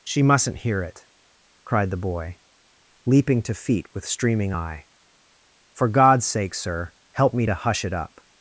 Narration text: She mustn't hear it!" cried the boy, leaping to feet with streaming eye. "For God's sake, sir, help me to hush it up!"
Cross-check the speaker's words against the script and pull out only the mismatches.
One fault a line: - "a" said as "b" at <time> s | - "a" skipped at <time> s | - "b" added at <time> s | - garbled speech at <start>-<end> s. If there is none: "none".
none